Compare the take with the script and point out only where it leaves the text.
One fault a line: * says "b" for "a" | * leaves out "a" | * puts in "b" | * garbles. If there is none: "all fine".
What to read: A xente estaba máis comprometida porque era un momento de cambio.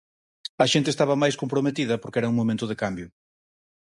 all fine